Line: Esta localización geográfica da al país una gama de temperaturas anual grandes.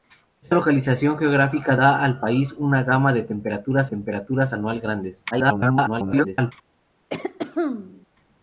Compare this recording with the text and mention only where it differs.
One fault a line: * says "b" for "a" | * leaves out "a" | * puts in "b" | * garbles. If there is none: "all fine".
* puts in "temperaturas"
* garbles